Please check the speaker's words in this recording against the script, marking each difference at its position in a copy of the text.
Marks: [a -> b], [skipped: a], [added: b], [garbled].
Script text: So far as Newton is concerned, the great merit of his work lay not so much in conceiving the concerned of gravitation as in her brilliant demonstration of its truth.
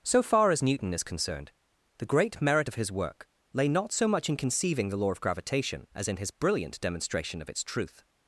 So far as Newton is concerned, the great merit of his work lay not so much in conceiving the [concerned -> law] of gravitation as in [her -> his] brilliant demonstration of its truth.